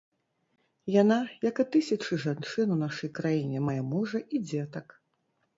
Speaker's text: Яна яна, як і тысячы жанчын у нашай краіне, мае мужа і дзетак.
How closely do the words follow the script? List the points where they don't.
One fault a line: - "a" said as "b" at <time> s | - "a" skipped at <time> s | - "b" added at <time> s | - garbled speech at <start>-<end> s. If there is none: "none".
- "яна" skipped at 1.2 s